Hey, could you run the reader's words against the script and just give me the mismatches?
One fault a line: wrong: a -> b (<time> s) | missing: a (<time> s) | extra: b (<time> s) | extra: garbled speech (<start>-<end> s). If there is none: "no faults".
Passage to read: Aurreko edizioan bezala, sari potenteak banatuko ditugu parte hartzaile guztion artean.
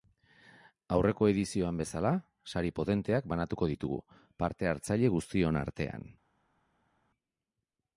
no faults